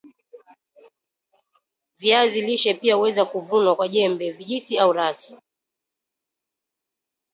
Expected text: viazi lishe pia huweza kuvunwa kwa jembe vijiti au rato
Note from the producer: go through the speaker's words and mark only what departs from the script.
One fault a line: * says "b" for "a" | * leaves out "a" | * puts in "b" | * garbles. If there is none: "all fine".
all fine